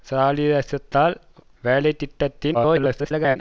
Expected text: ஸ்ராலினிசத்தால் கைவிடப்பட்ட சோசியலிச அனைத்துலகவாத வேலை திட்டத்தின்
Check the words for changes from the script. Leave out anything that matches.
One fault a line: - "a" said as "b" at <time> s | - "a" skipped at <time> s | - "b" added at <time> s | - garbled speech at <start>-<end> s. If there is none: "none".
- "கைவிடப்பட்ட சோசியலிச அனைத்துலகவாத" skipped at 1.1 s
- garbled speech at 2.5-3.4 s